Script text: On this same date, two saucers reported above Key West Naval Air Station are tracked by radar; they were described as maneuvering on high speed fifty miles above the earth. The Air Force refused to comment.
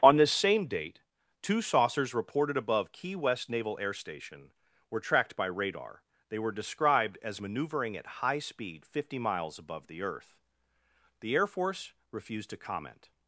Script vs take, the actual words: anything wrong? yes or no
yes